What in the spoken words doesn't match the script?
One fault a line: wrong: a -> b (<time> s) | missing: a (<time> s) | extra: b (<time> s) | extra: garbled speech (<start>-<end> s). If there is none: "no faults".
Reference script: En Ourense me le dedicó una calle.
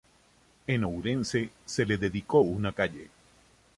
wrong: me -> se (1.6 s)